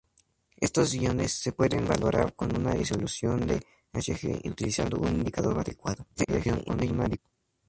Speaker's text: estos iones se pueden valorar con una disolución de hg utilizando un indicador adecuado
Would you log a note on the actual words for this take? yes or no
yes